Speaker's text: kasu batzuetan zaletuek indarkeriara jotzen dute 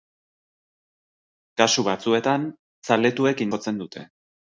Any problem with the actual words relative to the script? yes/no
yes